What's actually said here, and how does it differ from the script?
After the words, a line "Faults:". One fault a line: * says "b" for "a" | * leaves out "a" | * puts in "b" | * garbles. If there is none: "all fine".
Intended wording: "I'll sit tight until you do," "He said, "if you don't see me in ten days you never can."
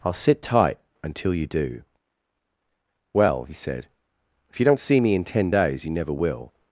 "I'll sit tight until you do." "Well," he said, "if you don't see me in ten days you never will."
Faults:
* puts in "Well"
* says "will" for "can"